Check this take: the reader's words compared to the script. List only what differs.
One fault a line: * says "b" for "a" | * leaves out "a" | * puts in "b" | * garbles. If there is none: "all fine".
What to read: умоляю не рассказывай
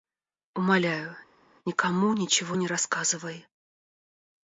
* puts in "никому ничего"